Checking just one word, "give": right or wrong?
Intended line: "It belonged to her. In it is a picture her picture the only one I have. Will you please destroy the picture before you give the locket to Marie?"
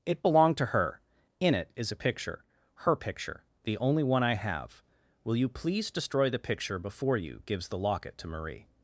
wrong